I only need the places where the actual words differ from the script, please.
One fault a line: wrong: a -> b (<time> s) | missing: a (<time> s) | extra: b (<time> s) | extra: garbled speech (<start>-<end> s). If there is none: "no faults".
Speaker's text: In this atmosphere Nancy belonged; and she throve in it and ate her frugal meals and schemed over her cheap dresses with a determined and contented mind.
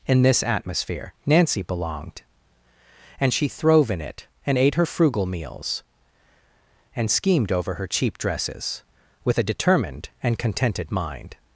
no faults